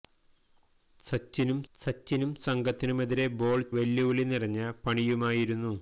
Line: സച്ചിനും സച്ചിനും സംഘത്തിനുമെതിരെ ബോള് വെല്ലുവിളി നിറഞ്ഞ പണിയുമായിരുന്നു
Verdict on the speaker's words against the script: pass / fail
pass